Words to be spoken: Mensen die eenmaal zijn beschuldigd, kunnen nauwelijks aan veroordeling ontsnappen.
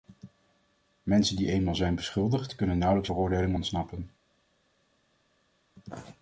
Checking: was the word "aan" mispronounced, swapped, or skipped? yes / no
yes